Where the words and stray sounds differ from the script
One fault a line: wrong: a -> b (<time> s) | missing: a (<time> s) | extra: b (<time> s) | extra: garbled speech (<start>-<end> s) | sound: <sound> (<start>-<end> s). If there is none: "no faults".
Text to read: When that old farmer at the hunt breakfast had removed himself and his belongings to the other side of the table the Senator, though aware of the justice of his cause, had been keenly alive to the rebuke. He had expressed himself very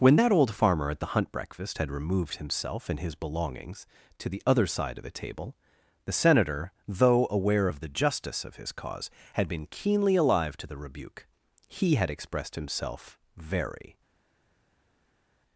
no faults